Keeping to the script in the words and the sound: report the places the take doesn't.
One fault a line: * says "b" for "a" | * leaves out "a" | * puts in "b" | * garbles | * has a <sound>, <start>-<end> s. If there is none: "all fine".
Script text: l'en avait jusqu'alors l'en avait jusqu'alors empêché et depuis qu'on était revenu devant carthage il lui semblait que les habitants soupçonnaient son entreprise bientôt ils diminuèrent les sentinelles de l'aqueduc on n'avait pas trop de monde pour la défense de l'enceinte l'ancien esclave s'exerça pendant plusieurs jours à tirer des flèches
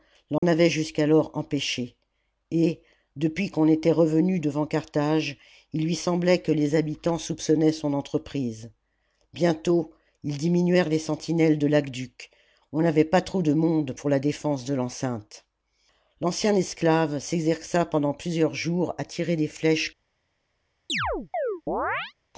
* has a dropout, 0.4-0.4 s
* leaves out "l'en avait jusqu'alors"
* has a chirp, 20.9-22.1 s